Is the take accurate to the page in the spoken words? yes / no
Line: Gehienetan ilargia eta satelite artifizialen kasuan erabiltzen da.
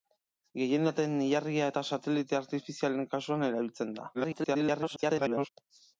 no